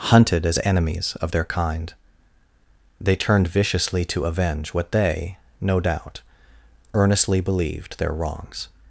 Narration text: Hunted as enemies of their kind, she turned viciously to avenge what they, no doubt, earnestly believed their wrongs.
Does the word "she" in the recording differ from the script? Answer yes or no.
yes